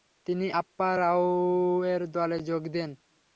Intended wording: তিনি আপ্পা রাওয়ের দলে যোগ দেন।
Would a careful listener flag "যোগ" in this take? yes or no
no